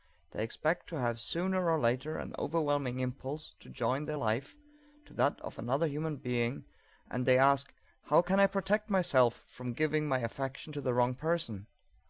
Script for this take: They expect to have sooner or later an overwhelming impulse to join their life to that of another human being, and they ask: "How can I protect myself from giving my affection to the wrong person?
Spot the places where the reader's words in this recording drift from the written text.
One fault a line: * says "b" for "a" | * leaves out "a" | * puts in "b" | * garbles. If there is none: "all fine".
all fine